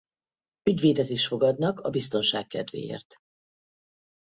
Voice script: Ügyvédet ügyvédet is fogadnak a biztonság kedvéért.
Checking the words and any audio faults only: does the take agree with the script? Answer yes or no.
no